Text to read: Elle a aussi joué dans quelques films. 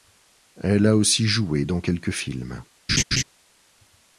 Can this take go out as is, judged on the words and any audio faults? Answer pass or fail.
fail